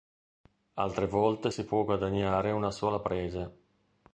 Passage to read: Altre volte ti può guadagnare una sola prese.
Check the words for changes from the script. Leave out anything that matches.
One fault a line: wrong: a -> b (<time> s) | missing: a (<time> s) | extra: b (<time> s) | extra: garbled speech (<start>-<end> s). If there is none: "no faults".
wrong: ti -> si (1.5 s)